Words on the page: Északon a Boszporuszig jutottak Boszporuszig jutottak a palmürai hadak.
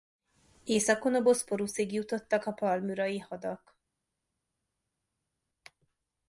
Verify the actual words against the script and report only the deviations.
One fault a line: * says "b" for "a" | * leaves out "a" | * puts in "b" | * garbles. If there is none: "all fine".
* leaves out "Boszporuszig jutottak"